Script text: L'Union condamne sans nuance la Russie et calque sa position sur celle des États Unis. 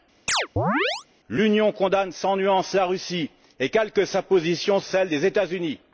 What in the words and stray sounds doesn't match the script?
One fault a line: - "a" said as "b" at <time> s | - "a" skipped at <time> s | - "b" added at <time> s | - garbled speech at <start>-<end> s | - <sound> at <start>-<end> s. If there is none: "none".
- chirp at 0.3-1.1 s
- "sur" skipped at 4.8 s